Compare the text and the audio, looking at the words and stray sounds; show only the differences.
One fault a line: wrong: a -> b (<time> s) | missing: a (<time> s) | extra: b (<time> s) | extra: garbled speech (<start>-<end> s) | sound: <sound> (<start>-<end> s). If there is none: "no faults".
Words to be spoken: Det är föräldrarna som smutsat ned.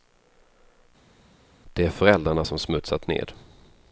no faults